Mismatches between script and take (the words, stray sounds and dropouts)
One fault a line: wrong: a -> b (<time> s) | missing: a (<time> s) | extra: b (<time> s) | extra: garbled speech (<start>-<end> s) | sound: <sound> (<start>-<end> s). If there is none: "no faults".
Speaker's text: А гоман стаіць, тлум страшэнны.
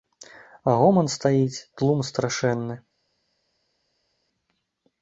no faults